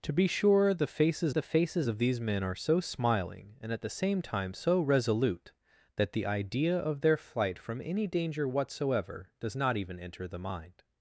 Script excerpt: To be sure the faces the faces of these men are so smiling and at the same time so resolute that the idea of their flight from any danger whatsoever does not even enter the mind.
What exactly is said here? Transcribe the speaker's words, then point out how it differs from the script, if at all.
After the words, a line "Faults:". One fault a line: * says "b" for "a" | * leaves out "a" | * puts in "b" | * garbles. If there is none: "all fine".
To be sure the faces the faces of these men are so smiling and at the same time so resolute that the idea of their flight from any danger whatsoever does not even enter the mind.
Faults:
all fine